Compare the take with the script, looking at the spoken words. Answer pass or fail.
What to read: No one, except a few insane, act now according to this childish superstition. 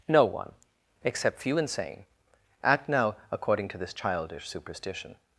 fail